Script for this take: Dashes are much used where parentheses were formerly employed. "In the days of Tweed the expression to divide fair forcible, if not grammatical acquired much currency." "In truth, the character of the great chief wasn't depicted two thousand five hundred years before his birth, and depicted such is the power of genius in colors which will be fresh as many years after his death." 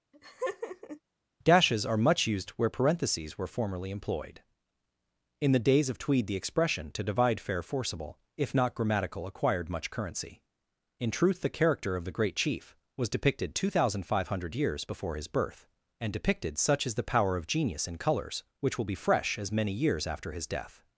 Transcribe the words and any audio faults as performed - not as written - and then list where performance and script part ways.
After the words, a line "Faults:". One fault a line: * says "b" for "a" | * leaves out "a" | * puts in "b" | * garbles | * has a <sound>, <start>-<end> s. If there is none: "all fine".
Dashes are much used where parentheses were formerly employed. "In the days of Tweed the expression to divide fair forcible, if not grammatical acquired much currency." "In truth, the character of the great chief was depicted two thousand five hundred years before his birth, and depicted such is the power of genius in colors which will be fresh as many years after his death."
Faults:
* has a laugh, 0.1-1.0 s
* says "was" for "wasn't"